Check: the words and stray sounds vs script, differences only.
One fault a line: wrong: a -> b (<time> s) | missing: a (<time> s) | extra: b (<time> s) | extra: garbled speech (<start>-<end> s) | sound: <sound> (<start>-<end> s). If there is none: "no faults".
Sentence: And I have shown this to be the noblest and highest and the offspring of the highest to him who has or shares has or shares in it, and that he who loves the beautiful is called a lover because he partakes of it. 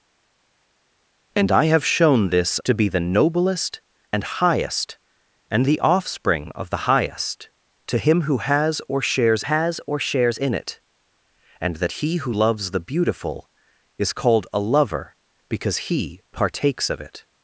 no faults